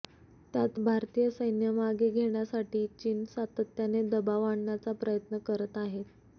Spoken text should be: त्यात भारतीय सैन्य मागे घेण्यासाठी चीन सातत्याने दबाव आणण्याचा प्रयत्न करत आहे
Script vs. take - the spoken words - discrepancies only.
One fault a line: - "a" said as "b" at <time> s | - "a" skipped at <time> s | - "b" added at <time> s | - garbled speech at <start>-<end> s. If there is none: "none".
none